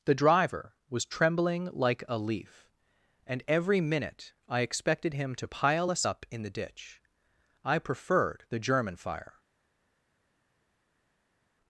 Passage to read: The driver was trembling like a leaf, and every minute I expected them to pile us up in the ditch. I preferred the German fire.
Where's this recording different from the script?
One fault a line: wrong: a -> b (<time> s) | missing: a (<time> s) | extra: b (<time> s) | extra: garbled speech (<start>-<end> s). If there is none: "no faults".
wrong: them -> him (5.1 s)